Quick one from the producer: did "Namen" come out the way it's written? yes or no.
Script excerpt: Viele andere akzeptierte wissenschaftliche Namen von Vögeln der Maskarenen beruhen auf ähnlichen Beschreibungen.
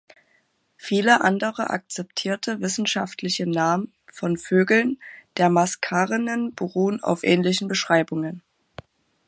yes